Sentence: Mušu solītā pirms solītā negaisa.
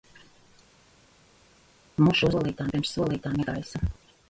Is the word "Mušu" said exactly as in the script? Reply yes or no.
yes